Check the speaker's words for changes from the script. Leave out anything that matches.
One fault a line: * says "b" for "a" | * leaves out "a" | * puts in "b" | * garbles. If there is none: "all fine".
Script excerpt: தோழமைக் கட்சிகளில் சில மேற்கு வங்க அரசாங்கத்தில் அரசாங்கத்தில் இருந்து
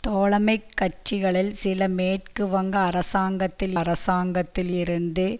all fine